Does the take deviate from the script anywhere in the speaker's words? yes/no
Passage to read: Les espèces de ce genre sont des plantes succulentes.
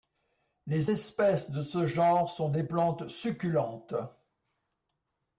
no